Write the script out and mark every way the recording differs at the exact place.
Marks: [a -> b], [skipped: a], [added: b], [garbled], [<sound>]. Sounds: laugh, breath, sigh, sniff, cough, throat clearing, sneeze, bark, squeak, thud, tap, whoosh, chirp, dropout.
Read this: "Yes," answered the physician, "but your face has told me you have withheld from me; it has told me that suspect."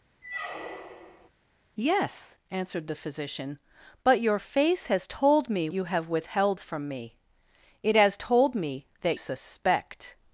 [squeak] "Yes," answered the physician, "but your face has told me you have withheld from me; it has told me that suspect."